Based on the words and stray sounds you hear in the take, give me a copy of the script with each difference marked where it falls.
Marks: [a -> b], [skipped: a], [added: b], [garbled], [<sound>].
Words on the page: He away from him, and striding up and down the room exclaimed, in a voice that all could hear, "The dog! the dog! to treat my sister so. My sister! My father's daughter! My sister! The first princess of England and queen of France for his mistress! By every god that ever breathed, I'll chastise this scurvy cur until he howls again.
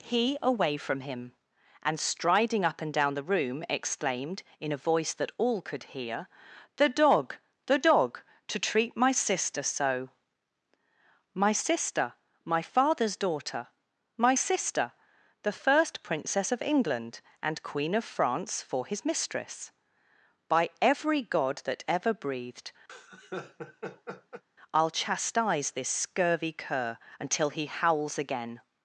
He away from him, and striding up and down the room exclaimed, in a voice that all could hear, "The dog! the dog! to treat my sister so. My sister! My father's daughter! My sister! The first princess of England and queen of France for his mistress! By every god that ever breathed, [laugh] I'll chastise this scurvy cur until he howls again.